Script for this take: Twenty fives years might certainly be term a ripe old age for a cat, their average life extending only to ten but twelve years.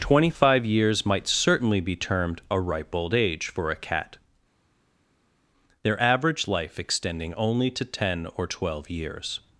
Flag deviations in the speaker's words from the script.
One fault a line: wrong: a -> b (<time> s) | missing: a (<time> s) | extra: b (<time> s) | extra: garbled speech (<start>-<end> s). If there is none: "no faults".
wrong: fives -> five (0.3 s)
wrong: term -> termed (1.9 s)
wrong: but -> or (8.4 s)